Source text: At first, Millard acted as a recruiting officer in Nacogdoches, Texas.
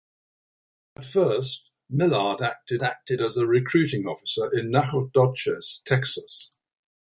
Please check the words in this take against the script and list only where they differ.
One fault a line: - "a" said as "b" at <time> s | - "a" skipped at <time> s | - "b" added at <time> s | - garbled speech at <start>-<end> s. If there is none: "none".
- "acted" added at 2.8 s